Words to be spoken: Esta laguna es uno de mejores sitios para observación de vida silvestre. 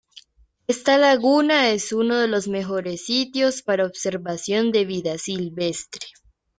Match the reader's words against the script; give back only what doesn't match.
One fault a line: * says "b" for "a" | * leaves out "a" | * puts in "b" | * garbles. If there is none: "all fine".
* puts in "los"